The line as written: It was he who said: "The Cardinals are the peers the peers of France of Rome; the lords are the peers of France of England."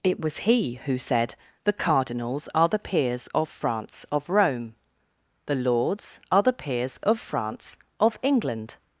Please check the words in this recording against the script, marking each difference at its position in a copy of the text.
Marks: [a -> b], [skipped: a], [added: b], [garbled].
It was he who said: "The Cardinals are the peers [skipped: the peers] of France of Rome; the lords are the peers of France of England."